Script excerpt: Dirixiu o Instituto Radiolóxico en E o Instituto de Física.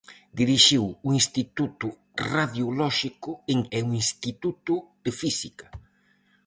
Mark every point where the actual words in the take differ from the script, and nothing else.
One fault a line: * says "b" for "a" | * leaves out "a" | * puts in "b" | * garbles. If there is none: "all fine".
all fine